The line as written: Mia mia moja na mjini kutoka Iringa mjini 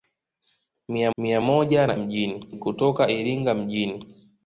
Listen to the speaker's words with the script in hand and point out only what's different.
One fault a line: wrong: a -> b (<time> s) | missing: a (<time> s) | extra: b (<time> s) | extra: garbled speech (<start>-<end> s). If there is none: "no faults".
no faults